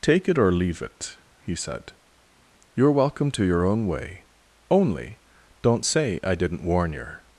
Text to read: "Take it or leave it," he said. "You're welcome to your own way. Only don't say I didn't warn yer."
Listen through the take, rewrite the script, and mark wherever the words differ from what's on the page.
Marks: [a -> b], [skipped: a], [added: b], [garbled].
"Take it or leave it," he said. "You're welcome to your own way. Only don't say I didn't warn yer."